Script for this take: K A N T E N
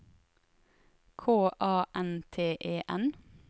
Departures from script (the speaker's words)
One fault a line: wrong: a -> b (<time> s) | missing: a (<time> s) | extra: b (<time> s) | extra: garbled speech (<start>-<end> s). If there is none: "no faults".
no faults